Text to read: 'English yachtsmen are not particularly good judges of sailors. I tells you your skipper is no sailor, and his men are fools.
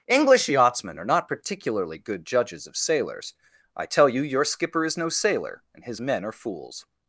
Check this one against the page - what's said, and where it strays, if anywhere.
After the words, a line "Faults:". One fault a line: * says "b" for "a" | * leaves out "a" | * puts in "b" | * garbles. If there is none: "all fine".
'English yachtsmen are not particularly good judges of sailors. I tell you your skipper is no sailor, and his men are fools.
Faults:
* says "tell" for "tells"